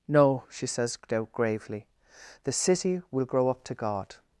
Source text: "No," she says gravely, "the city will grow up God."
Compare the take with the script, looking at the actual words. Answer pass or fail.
fail